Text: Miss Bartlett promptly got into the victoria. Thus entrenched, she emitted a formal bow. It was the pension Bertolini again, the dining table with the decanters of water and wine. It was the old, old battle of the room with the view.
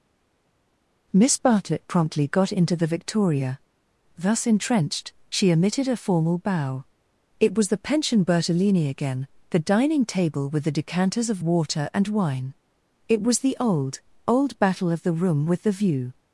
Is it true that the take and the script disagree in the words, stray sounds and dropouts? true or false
false